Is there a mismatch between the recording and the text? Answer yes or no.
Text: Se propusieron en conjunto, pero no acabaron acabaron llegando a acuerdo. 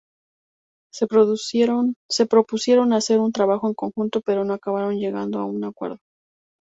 yes